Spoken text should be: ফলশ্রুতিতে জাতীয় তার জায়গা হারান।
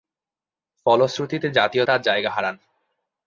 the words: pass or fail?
pass